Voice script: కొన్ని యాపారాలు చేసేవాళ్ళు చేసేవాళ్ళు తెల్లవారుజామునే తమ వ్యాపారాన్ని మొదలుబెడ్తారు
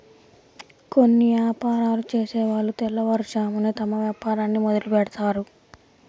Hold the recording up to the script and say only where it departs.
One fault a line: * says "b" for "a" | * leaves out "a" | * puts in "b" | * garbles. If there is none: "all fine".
* leaves out "చేసేవాళ్ళు"